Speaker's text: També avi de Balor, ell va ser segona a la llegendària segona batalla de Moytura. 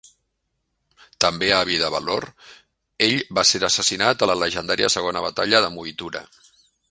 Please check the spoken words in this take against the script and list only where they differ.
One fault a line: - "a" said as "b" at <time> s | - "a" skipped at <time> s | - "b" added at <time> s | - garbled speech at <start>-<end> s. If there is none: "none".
- "segona" said as "assassinat" at 3.7 s